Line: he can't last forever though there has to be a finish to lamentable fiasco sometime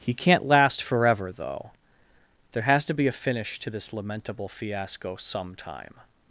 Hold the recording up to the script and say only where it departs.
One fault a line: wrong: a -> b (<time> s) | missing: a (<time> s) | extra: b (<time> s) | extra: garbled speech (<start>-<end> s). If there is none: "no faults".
extra: this (3.7 s)